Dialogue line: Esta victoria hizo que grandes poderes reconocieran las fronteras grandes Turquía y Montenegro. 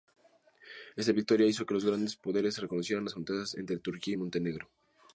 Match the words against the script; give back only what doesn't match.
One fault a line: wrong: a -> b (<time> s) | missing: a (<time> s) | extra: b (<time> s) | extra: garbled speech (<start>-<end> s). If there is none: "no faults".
extra: los (1.8 s)
wrong: grandes -> entre (3.5 s)